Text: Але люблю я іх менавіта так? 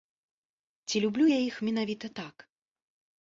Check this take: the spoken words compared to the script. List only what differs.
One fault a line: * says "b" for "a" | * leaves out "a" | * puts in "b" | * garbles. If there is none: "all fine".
* says "Ці" for "Але"